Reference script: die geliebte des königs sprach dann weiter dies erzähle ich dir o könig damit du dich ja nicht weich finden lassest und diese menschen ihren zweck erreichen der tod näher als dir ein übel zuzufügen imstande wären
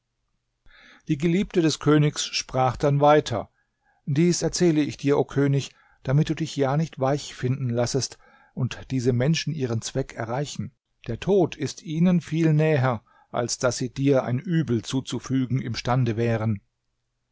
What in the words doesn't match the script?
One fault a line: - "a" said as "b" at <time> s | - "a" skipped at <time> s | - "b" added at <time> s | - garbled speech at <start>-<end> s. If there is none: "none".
- "ist ihnen viel" added at 11.6 s
- "daß sie" added at 13.6 s